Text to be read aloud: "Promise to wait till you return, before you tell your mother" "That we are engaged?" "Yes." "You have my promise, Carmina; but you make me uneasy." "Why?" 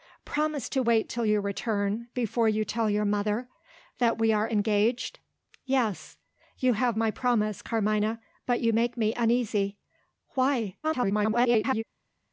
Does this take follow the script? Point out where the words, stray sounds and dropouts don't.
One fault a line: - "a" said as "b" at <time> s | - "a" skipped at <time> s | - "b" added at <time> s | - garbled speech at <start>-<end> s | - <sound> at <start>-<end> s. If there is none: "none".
- garbled speech at 10.8-11.8 s